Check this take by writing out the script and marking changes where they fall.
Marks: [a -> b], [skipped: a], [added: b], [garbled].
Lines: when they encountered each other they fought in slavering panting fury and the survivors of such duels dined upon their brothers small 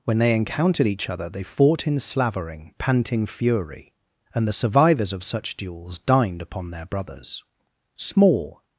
when they encountered each other they fought in slavering panting fury and the survivors of such duels dined upon their brothers small